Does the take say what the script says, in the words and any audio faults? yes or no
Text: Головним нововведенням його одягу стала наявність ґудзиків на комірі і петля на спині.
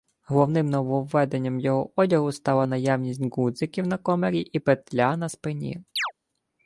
no